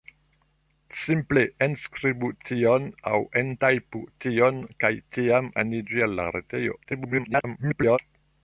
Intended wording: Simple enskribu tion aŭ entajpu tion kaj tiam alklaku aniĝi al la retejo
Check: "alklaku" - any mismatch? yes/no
yes